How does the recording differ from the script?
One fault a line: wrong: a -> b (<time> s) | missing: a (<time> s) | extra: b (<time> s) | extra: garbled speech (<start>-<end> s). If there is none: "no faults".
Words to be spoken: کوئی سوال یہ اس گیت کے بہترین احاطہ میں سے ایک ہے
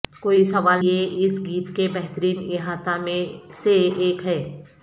no faults